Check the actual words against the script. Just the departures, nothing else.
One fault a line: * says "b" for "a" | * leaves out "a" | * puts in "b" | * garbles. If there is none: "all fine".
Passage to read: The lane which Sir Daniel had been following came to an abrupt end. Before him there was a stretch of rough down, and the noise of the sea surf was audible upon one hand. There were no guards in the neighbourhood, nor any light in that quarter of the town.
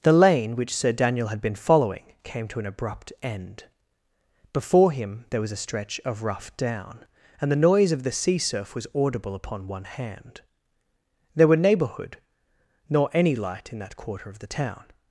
* leaves out "no guards in the"